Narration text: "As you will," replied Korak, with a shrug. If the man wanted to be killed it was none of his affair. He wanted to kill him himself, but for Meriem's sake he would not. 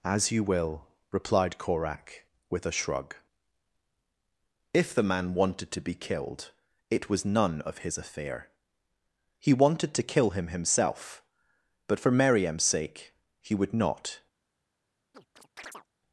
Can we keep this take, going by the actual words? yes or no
yes